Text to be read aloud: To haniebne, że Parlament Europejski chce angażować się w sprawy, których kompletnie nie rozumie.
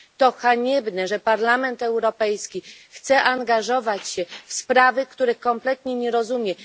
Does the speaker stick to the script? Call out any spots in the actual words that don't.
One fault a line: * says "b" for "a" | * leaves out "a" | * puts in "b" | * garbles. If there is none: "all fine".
all fine